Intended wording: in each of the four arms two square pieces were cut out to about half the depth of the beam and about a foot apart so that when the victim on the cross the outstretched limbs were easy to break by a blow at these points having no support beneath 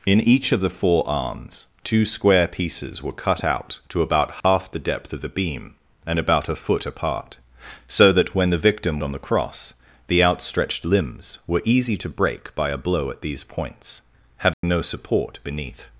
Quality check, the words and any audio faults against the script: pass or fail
fail